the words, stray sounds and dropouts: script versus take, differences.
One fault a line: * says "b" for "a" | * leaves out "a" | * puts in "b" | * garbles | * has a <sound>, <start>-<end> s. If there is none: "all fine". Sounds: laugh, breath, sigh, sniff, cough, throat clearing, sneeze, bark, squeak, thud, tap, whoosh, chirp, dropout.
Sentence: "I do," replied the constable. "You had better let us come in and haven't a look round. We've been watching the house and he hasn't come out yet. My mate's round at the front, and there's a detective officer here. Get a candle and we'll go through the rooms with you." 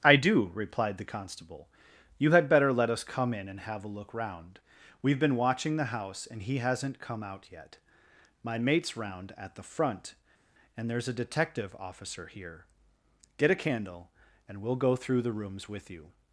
* says "have" for "haven't"